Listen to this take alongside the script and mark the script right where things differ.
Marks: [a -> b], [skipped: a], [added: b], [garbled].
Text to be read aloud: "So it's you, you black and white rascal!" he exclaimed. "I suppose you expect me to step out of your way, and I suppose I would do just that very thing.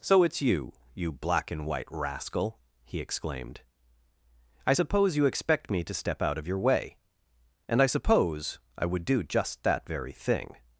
"So it's you, you black and white rascal!" he exclaimed. "I suppose you expect me to step out of your way, and I suppose I would do just that very thing.